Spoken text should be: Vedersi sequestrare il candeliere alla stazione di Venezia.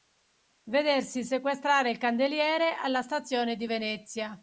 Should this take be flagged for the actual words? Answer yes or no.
no